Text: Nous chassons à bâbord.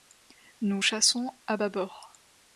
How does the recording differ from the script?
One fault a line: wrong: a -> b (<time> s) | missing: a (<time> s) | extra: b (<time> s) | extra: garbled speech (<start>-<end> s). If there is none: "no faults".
no faults